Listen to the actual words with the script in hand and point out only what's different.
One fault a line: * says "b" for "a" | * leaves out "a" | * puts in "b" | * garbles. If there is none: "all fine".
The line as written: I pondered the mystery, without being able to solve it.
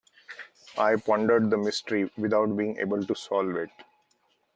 all fine